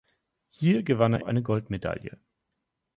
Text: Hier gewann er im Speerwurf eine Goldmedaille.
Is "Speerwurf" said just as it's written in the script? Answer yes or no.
no